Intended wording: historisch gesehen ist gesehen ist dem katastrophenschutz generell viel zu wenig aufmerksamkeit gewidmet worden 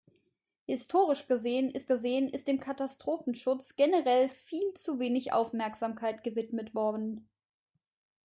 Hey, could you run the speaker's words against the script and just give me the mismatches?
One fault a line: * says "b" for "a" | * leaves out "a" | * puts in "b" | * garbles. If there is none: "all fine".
all fine